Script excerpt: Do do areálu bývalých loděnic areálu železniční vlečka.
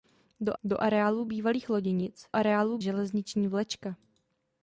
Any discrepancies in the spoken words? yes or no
no